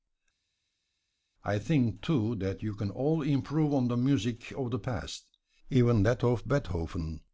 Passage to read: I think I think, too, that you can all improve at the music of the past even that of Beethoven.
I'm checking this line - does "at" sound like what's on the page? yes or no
no